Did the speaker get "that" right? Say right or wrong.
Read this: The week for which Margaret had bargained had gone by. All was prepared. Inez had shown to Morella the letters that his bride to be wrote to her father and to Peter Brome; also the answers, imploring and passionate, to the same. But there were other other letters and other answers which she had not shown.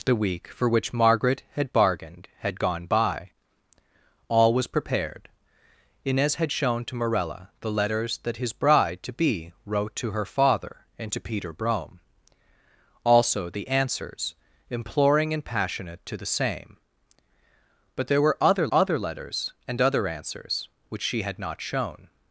right